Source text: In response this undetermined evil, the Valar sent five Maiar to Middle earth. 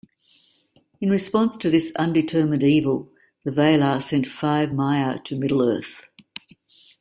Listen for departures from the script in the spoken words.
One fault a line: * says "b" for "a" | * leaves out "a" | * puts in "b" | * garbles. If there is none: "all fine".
* puts in "to"